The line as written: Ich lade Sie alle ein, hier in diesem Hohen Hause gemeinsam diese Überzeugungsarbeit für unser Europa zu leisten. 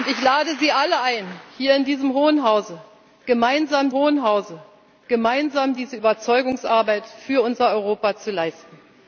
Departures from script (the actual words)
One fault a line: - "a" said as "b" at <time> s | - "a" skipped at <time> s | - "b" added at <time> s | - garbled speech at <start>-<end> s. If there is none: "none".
- "Hohen Hause gemeinsam" added at 3.9 s